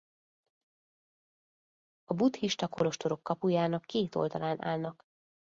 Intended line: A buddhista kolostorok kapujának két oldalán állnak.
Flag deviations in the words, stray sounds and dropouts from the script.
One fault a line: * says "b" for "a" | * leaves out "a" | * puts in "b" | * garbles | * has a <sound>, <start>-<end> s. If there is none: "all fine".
all fine